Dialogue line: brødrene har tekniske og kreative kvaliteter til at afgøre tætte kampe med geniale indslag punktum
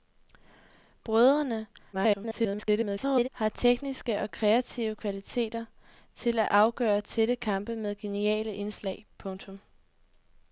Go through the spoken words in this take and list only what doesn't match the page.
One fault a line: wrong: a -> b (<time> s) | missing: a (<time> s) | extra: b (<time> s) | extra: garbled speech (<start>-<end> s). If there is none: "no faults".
extra: garbled speech (1.9-3.3 s)